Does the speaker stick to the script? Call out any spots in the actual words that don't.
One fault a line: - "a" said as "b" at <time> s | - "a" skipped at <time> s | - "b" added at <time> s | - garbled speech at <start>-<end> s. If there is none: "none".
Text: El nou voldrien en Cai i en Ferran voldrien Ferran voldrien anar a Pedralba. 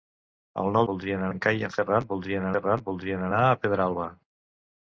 none